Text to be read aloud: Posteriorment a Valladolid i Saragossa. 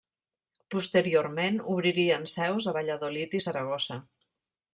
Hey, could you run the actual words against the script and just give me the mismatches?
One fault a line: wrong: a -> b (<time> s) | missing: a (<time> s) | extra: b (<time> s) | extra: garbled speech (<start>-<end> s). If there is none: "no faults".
extra: obririen seus (1.7 s)